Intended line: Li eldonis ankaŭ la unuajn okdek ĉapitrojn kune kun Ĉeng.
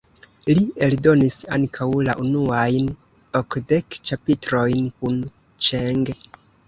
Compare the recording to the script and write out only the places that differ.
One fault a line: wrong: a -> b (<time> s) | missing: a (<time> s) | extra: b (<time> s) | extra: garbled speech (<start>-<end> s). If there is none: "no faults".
missing: kune (4.9 s)